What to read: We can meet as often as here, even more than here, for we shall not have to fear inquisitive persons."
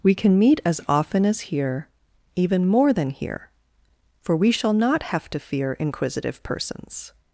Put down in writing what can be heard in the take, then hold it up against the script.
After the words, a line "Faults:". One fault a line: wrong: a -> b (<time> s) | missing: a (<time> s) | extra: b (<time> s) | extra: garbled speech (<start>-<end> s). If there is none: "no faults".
We can meet as often as here, even more than here, for we shall not have to fear inquisitive persons."
Faults:
no faults